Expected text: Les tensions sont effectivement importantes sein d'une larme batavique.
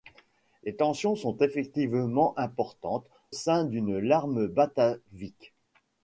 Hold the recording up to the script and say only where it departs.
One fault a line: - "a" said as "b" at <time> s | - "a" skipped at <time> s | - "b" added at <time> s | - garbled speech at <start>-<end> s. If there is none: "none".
none